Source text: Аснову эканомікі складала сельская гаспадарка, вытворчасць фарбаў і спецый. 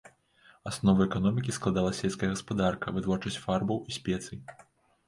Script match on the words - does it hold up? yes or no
yes